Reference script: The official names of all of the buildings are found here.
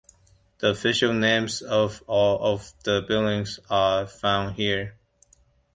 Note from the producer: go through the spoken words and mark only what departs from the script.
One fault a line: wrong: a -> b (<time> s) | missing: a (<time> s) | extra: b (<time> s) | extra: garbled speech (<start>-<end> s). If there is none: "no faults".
no faults